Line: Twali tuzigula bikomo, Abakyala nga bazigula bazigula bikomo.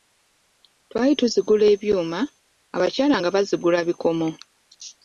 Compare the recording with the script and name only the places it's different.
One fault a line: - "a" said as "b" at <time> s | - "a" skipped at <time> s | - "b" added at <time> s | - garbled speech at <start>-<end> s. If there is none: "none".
- "bikomo" said as "ebyuma" at 1.7 s
- "bazigula" skipped at 3.8 s